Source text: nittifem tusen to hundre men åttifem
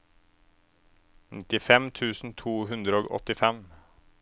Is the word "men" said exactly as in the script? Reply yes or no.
no